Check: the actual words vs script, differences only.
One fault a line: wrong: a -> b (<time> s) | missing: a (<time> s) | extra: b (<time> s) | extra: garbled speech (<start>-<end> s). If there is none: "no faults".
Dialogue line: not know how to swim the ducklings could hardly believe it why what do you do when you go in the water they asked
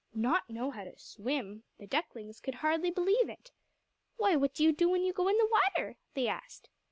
no faults